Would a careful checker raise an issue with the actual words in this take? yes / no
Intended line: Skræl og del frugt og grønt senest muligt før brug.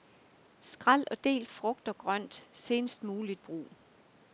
yes